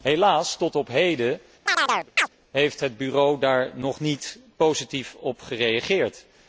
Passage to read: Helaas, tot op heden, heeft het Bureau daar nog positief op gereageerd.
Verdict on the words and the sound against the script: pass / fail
fail